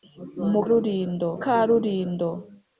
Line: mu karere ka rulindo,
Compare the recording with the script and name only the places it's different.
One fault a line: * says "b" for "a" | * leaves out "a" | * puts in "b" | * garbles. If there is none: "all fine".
* says "rulindo" for "karere"